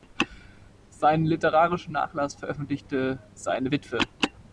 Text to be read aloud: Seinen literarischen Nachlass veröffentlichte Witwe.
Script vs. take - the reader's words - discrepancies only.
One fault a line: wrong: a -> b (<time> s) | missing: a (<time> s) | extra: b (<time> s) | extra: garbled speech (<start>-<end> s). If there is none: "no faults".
extra: seine (3.3 s)